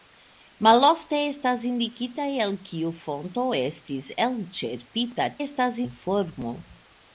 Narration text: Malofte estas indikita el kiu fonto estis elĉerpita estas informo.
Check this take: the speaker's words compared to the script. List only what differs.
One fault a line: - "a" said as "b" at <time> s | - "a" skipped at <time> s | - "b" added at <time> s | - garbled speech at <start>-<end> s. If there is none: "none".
none